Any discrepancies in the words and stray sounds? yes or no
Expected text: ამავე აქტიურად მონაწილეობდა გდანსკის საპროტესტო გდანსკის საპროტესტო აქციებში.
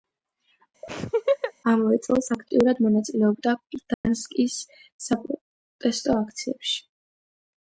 yes